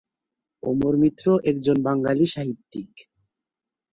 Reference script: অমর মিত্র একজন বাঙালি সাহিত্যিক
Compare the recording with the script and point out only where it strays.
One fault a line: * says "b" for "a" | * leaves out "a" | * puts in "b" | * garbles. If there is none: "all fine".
all fine